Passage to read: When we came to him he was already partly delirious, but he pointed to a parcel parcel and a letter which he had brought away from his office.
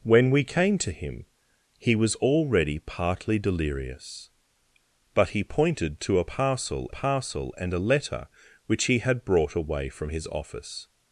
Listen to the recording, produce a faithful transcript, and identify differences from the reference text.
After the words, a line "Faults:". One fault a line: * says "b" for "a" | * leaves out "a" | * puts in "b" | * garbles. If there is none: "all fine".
When we came to him he was already partly delirious, but he pointed to a parcel parcel and a letter which he had brought away from his office.
Faults:
all fine